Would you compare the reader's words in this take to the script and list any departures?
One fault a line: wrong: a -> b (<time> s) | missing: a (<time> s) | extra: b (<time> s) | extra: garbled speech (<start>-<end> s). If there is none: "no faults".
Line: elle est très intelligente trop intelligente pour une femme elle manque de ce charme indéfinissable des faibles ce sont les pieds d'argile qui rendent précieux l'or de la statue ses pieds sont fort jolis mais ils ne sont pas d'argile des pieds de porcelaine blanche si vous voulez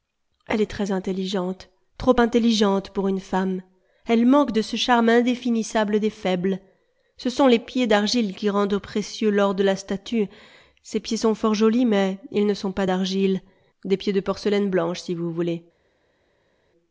no faults